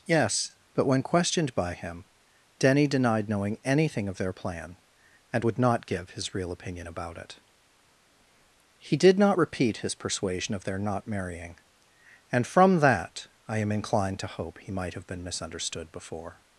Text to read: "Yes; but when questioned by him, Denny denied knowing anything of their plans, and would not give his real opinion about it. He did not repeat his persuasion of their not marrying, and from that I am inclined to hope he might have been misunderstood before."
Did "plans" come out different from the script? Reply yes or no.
yes